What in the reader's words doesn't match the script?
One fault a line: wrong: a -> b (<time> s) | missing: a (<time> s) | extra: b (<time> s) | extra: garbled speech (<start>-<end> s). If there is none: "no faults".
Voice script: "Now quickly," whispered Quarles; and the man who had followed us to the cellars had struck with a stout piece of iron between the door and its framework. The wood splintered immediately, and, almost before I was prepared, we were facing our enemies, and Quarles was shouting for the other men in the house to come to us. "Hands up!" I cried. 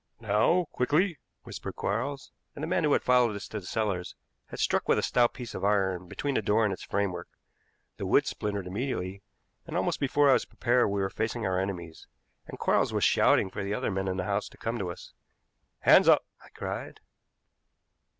no faults